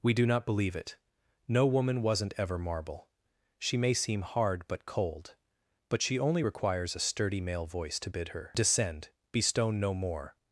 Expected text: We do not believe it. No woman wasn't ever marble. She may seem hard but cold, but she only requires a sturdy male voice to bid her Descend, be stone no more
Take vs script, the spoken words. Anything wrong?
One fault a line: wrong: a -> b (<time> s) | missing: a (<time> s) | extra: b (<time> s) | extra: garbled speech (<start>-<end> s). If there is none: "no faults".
no faults